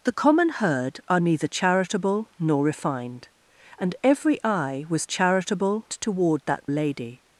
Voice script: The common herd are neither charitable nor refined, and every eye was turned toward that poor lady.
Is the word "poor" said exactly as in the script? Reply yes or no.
no